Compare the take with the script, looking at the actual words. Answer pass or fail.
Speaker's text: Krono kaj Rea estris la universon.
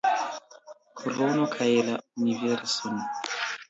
fail